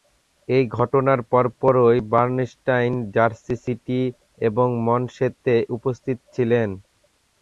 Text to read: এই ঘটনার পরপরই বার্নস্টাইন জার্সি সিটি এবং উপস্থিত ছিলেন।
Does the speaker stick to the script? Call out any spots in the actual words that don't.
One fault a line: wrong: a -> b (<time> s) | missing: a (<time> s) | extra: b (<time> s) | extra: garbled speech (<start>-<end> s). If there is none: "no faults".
extra: মনসেতে (4.9 s)